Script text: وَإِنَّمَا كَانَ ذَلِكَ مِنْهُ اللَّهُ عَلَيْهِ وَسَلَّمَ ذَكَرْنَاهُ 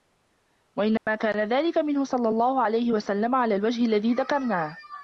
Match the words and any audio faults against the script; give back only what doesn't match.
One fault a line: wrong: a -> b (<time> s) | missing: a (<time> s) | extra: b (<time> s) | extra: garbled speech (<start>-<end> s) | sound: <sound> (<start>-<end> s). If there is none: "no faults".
sound: dropout (1.0-1.1 s)
extra: صَلَّى (2.0 s)
extra: عَلَى الْوَجْهِ الَّذِي (3.4 s)